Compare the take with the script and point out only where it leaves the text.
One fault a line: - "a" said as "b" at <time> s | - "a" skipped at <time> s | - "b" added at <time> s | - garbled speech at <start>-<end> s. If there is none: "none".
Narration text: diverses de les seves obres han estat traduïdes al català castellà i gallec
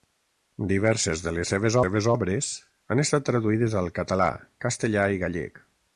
- "seves" added at 1.8 s